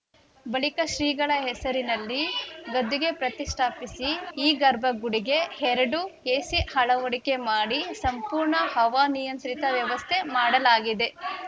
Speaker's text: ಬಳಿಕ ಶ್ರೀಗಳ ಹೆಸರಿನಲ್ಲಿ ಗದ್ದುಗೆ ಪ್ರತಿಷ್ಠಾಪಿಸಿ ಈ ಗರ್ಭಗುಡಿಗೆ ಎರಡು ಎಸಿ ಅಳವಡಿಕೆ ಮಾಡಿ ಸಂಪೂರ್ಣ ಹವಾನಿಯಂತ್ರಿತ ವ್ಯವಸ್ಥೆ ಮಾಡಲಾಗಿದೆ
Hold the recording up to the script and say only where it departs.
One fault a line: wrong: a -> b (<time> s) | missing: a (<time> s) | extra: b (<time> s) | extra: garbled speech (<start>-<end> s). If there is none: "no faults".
no faults